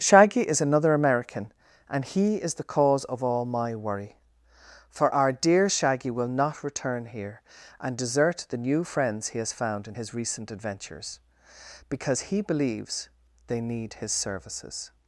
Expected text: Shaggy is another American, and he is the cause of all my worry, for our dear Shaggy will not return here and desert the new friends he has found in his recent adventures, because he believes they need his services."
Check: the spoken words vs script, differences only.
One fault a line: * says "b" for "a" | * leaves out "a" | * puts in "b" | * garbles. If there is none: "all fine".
all fine